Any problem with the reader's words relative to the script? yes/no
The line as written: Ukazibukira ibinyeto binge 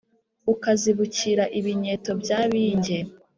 yes